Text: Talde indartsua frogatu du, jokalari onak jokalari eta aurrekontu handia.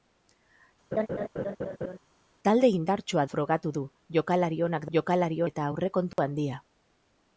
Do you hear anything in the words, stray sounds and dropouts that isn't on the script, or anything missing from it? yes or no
yes